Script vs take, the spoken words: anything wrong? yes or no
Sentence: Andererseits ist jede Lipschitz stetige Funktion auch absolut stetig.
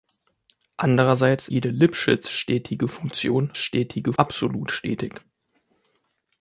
yes